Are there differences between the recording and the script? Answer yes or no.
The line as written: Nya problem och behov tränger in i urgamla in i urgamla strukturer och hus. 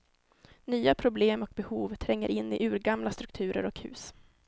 yes